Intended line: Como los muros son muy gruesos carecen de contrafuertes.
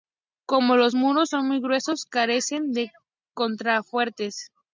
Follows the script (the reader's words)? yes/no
yes